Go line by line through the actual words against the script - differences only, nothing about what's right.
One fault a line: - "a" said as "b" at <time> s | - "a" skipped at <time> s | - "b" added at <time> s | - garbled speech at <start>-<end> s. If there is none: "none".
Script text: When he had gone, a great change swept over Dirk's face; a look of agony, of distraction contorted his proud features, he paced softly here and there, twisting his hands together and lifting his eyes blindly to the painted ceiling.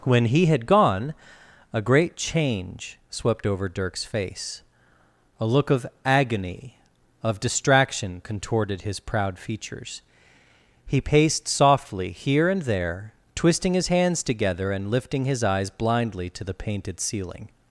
none